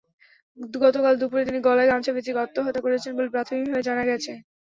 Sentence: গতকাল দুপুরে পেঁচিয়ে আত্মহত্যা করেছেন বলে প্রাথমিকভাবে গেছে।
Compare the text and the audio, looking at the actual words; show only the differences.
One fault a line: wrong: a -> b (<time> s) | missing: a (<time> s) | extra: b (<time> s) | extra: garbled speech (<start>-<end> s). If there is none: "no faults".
extra: তিনি গলায় গামছা (1.5 s)
extra: জানা (3.9 s)